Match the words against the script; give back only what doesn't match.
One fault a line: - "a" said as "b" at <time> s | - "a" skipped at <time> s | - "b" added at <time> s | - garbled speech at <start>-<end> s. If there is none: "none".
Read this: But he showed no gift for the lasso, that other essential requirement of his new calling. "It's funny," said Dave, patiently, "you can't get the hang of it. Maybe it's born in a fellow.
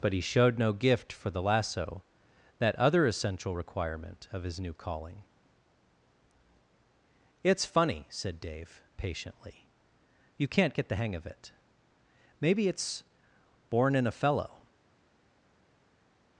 none